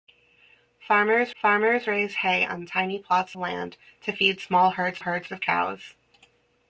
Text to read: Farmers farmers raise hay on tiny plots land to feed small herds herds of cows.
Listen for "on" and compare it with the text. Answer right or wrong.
right